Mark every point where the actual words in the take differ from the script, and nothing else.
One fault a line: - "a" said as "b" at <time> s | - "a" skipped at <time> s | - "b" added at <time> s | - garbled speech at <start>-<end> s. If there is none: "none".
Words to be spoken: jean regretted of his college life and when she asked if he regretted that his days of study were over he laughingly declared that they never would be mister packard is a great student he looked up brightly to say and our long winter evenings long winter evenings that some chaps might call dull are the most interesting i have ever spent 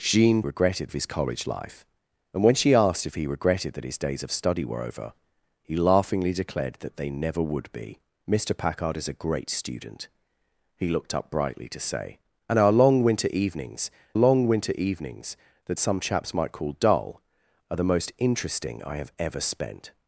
none